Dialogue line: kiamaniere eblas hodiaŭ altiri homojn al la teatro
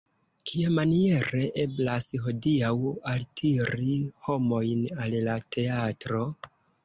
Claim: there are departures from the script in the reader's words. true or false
false